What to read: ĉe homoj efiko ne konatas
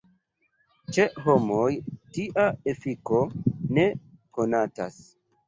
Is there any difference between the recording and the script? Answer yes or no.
yes